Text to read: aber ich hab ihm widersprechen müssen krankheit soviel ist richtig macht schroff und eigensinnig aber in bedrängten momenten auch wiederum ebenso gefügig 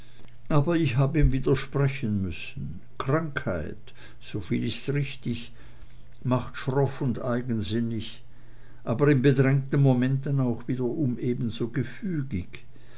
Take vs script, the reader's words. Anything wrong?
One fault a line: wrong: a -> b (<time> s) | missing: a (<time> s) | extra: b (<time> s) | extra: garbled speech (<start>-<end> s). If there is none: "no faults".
no faults